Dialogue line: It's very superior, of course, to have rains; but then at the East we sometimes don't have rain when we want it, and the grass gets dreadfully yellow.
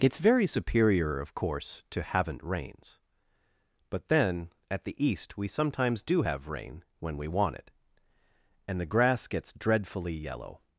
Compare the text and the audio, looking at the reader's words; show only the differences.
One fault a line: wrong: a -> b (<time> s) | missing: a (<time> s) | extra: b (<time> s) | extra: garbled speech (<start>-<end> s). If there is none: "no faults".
wrong: have -> haven't (2.0 s)
wrong: don't -> do (6.0 s)